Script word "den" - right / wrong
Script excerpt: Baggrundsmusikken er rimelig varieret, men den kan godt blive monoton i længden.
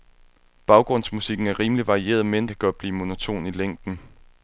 wrong